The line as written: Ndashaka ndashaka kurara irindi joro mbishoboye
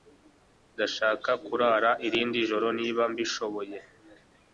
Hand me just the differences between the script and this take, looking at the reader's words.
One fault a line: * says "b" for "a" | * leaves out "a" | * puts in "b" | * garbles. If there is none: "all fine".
* leaves out "ndashaka"
* puts in "niba"